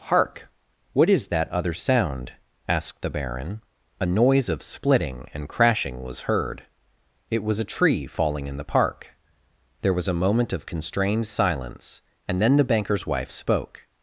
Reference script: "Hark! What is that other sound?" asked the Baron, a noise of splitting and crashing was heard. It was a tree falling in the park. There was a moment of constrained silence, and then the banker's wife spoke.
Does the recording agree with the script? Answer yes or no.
yes